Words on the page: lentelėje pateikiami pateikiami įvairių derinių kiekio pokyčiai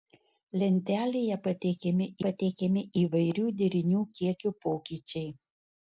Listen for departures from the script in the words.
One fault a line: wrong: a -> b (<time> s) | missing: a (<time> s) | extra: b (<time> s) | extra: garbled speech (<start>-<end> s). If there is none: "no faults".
no faults